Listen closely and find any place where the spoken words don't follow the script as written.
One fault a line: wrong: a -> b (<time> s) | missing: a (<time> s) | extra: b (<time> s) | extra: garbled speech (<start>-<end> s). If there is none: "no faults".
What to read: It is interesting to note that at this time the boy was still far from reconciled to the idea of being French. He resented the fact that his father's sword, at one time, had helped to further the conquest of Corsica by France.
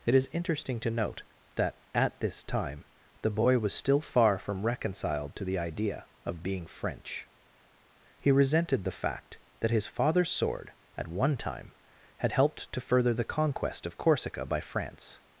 no faults